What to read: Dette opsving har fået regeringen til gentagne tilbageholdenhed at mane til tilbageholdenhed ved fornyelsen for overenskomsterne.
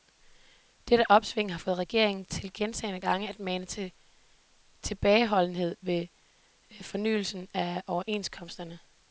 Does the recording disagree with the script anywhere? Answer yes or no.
yes